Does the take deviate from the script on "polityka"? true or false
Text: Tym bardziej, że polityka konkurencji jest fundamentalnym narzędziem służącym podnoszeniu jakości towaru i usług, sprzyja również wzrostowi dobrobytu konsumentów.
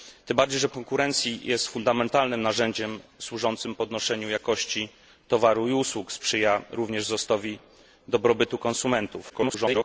true